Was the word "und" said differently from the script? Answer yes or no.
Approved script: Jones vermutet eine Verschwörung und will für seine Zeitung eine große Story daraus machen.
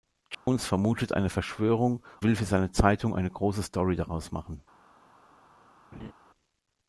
yes